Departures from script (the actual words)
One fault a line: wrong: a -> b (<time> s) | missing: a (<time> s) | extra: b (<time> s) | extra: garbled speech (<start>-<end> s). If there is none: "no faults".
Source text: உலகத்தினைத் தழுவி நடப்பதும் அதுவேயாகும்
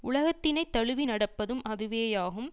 no faults